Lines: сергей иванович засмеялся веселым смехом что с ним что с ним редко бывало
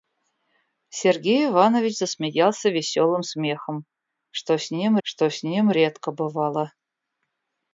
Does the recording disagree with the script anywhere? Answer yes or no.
no